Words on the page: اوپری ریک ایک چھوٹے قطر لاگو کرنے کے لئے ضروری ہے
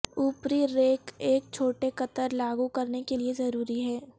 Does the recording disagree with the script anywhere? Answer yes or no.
no